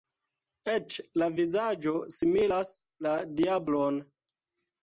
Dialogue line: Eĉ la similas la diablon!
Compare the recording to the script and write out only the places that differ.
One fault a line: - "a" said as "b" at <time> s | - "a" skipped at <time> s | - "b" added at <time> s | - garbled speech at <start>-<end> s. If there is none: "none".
- "vizaĝo" added at 1.4 s